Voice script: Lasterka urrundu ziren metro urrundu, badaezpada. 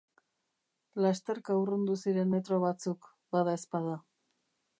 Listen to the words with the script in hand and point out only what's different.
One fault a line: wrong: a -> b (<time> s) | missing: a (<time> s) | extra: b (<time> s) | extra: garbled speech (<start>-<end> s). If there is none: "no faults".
wrong: urrundu -> batzuk (2.7 s)